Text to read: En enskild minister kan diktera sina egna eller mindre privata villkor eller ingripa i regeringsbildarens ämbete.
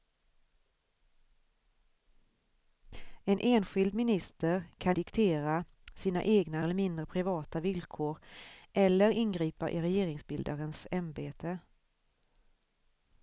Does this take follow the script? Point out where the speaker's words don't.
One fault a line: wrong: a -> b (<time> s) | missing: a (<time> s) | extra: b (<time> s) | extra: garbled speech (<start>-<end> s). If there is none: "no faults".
no faults